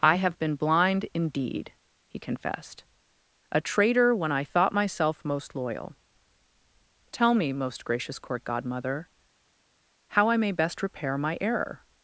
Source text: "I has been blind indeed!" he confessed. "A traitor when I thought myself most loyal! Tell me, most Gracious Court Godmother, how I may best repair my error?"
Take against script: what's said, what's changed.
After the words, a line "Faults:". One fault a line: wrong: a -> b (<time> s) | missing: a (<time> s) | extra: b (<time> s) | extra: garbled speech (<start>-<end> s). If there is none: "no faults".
"I have been blind indeed!" he confessed. "A traitor when I thought myself most loyal! Tell me, most Gracious Court Godmother, how I may best repair my error?"
Faults:
wrong: has -> have (0.1 s)